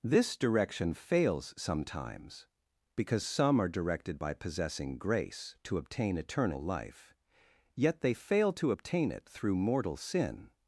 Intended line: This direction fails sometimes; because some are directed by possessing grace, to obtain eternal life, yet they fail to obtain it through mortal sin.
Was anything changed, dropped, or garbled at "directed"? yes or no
no